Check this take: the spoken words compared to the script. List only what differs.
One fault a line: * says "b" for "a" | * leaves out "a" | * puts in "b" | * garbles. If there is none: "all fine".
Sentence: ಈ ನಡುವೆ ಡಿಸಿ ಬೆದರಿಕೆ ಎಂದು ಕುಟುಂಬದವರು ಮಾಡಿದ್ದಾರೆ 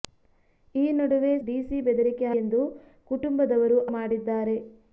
all fine